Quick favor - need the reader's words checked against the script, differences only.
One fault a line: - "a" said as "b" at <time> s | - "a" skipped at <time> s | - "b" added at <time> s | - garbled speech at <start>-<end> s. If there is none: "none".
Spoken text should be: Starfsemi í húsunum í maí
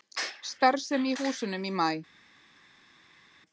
none